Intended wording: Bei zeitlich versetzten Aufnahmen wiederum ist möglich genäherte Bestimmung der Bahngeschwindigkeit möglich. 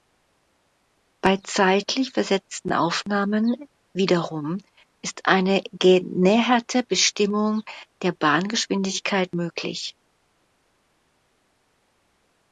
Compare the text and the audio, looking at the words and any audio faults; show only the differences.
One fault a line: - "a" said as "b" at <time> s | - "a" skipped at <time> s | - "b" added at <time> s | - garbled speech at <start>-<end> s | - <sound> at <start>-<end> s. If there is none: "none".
- "möglich" said as "eine" at 5.3 s